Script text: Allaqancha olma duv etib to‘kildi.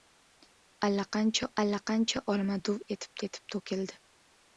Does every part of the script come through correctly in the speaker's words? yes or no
no